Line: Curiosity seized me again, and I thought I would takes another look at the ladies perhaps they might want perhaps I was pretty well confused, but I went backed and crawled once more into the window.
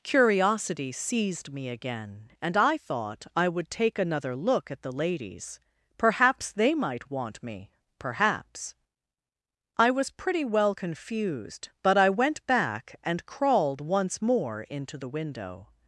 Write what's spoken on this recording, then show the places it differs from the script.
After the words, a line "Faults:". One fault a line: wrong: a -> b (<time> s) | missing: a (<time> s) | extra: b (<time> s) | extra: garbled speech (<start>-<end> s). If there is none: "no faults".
Curiosity seized me again, and I thought I would take another look at the ladies perhaps they might want me perhaps I was pretty well confused, but I went back and crawled once more into the window.
Faults:
wrong: takes -> take (3.7 s)
extra: me (7.4 s)
wrong: backed -> back (12.5 s)